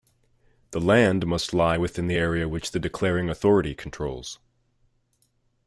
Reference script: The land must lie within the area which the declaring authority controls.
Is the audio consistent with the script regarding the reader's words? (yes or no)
yes